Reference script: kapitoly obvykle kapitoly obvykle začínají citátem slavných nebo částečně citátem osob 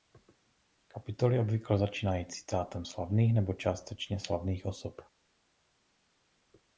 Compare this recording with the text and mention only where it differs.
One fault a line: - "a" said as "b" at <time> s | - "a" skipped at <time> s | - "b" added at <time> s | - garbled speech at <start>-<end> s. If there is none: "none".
- "kapitoly obvykle" skipped at 1.8 s
- "citátem" said as "slavných" at 4.2 s